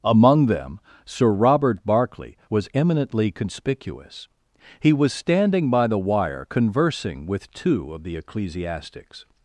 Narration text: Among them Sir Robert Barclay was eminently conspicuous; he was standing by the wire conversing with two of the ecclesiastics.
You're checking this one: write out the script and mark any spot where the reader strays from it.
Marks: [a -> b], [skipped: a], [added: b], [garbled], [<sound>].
Among them Sir Robert Barclay was eminently conspicuous; he was standing by the wire conversing with two of the ecclesiastics.